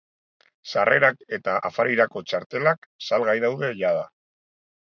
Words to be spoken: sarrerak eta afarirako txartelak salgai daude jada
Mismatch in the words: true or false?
false